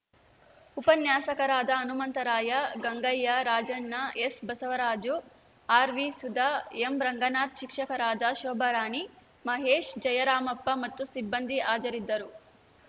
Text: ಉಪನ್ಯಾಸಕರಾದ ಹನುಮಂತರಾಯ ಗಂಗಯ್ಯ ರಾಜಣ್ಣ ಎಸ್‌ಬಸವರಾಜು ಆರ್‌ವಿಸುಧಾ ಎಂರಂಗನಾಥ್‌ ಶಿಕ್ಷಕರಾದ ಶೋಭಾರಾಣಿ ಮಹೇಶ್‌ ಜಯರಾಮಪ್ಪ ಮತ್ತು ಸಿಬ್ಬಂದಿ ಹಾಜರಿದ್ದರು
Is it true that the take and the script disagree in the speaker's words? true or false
false